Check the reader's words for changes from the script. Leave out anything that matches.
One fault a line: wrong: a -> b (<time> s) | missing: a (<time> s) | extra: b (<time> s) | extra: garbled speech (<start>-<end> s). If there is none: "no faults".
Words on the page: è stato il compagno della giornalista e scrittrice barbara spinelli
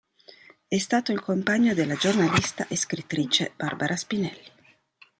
no faults